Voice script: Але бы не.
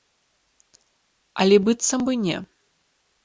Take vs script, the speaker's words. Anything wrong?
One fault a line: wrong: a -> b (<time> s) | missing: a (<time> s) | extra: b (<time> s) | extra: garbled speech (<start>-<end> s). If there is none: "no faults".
extra: быццам (1.7 s)